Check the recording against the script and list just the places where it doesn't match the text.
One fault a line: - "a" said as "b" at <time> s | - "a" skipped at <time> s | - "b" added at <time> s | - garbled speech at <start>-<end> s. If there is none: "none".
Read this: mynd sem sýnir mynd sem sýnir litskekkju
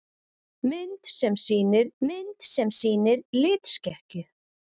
none